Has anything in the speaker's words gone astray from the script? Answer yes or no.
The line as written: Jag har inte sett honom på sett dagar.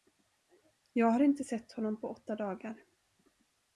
yes